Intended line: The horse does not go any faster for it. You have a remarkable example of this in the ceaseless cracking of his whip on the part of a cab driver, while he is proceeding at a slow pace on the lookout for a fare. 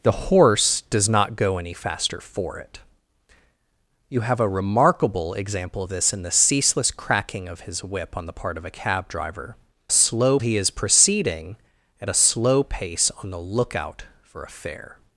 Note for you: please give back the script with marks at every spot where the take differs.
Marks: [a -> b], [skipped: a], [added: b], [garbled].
The horse does not go any faster for it. You have a remarkable example of this in the ceaseless cracking of his whip on the part of a cab driver, [while -> slow] he is proceeding at a slow pace on the lookout for a fare.